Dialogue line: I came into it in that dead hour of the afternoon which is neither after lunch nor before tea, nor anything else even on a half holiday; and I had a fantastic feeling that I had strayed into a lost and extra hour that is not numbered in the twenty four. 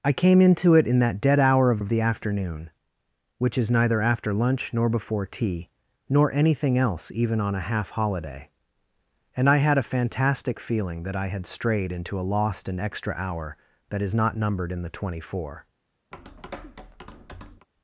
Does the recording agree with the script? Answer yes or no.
no